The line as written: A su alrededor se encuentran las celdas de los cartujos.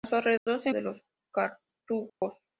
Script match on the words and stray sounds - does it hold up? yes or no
no